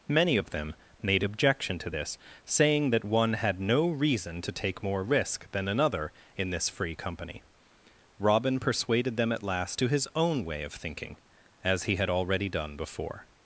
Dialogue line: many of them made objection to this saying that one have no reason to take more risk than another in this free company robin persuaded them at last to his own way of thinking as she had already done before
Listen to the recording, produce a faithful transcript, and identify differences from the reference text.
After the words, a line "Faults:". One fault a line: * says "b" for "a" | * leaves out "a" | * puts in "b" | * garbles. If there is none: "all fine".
many of them made objection to this saying that one had no reason to take more risk than another in this free company robin persuaded them at last to his own way of thinking as he had already done before
Faults:
* says "had" for "have"
* says "he" for "she"